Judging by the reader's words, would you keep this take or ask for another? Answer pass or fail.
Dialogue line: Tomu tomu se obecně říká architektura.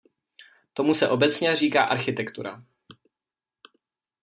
fail